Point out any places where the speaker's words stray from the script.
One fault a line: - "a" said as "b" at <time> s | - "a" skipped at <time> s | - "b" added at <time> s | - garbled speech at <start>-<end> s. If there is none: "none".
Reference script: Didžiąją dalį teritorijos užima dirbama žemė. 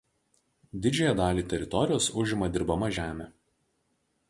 none